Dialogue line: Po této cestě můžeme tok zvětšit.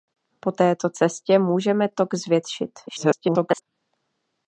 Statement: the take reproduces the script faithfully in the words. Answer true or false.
false